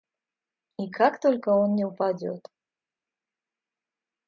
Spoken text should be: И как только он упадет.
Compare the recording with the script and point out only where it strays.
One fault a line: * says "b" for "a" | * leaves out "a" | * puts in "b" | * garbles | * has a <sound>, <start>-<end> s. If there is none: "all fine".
* puts in "не"